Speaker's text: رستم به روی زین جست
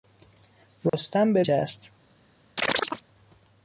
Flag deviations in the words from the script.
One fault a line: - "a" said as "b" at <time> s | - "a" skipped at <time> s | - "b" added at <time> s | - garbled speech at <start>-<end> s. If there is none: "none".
- "روی زین" skipped at 1.4 s